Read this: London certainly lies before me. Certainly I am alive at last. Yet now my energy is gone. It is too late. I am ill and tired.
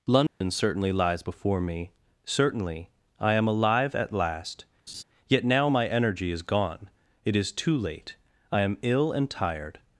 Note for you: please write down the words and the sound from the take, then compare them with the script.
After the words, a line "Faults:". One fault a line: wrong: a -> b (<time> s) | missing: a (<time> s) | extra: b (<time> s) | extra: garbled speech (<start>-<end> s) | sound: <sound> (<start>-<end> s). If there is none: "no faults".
London certainly lies before me. Certainly I am alive at last. Yet now my energy is gone. It is too late. I am ill and tired.
Faults:
sound: dropout (0.3-0.4 s)
sound: laugh (4.9-5.0 s)